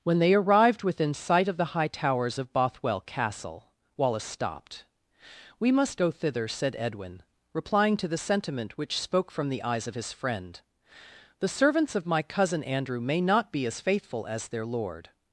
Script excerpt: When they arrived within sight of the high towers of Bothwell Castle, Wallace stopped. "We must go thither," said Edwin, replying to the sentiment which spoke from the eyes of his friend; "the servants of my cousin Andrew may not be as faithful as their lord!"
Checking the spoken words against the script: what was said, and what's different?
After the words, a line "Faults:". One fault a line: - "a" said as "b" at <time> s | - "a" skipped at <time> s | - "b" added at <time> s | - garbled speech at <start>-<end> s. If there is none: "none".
When they arrived within sight of the high towers of Bothwell Castle, Wallace stopped. "We must go thither," said Edwin, replying to the sentiment which spoke from the eyes of his friend; "the servants of my cousin Andrew may not be as faithful as their lord!"
Faults:
none